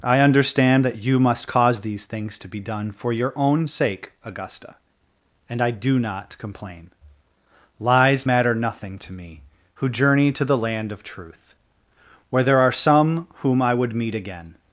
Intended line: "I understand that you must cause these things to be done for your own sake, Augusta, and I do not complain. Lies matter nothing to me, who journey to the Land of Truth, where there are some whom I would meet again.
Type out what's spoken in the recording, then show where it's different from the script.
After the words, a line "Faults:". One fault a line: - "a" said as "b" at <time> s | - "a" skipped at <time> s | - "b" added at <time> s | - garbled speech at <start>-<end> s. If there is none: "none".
"I understand that you must cause these things to be done for your own sake, Augusta, and I do not complain. Lies matter nothing to me, who journey to the Land of Truth, where there are some whom I would meet again.
Faults:
none